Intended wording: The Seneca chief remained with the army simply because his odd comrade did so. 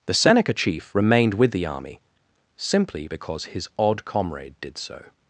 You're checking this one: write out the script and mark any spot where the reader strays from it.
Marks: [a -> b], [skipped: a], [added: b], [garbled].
The Seneca chief remained with the army simply because his odd comrade did so.